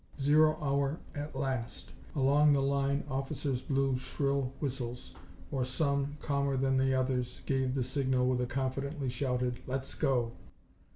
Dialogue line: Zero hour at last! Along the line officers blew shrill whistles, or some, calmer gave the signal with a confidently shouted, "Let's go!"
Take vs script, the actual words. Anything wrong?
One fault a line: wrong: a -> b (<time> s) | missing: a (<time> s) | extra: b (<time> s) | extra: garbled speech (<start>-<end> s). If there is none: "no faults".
extra: than the others (6.6 s)